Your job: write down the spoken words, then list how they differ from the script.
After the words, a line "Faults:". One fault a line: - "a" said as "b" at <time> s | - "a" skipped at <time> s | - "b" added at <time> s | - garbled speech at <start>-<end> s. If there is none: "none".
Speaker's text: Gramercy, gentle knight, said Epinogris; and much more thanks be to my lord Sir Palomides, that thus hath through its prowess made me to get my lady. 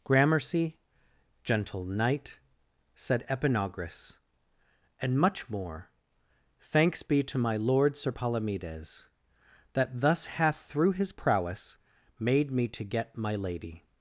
Gramercy, gentle knight, said Epinogris; and much more thanks be to my lord Sir Palomides, that thus hath through his prowess made me to get my lady.
Faults:
- "its" said as "his" at 10.9 s